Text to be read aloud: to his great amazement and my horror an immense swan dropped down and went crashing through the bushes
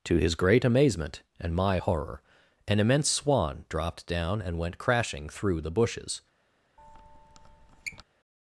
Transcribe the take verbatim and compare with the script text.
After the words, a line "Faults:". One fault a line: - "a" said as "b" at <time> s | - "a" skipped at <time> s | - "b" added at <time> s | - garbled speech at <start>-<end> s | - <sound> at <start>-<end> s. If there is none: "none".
to his great amazement and my horror an immense swan dropped down and went crashing through the bushes
Faults:
- squeak at 6.8-8.0 s